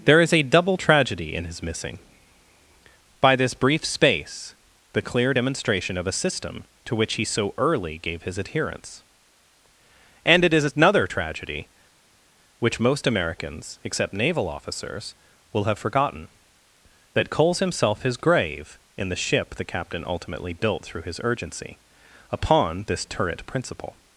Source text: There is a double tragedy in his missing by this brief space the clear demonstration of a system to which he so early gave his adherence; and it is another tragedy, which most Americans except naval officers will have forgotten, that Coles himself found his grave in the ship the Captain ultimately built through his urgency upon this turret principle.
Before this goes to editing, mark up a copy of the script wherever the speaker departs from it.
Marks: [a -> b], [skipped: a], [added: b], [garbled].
There is a double tragedy in his missing by this brief space the clear demonstration of a system to which he so early gave his adherence; and it is another tragedy, which most Americans except naval officers will have forgotten, that Coles himself [skipped: found] his grave in the ship the Captain ultimately built through his urgency upon this turret principle.